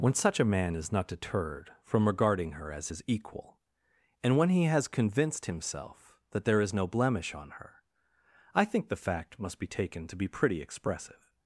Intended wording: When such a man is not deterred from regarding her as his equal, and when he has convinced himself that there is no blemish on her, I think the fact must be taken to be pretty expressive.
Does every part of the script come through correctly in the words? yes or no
yes